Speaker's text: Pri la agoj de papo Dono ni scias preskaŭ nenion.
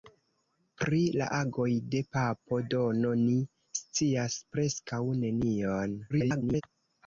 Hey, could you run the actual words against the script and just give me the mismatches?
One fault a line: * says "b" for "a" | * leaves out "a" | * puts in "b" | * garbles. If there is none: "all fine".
* garbles